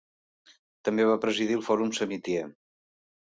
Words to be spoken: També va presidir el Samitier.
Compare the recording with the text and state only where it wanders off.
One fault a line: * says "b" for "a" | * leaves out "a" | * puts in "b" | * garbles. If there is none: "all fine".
* puts in "Fòrum"